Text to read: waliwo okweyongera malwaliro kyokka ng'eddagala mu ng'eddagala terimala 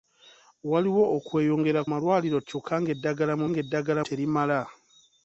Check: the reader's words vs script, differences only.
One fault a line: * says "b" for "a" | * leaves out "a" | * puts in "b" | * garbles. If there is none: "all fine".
all fine